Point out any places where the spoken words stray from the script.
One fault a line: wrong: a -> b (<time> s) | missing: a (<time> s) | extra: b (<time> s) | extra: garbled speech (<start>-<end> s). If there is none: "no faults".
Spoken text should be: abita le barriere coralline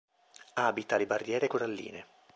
no faults